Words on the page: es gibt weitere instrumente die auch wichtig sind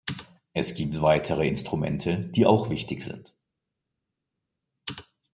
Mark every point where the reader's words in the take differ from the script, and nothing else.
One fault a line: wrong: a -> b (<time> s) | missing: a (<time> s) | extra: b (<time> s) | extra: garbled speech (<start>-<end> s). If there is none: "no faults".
no faults